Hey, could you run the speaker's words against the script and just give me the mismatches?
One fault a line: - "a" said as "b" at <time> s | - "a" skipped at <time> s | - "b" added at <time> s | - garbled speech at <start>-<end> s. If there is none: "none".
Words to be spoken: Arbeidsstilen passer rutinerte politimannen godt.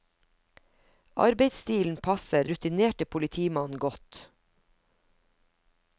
none